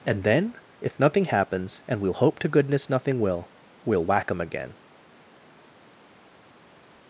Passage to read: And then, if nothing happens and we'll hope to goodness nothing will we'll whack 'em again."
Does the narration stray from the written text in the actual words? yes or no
no